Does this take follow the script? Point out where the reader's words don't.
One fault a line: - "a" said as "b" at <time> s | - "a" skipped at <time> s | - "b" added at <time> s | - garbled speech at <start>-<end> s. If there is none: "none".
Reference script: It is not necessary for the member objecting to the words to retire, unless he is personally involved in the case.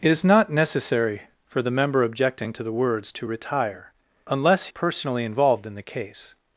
- "he is" skipped at 4.7 s